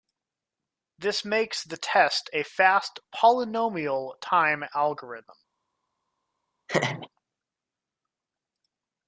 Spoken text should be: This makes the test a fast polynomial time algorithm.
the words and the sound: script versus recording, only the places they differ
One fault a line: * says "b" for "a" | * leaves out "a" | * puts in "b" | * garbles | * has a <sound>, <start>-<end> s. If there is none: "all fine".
* has a laugh, 6.7-7.1 s